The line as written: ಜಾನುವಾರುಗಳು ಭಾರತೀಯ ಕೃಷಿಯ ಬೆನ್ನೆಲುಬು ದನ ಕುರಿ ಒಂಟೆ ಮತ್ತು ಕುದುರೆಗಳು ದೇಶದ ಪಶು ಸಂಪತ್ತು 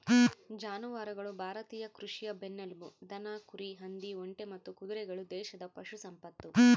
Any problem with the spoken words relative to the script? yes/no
yes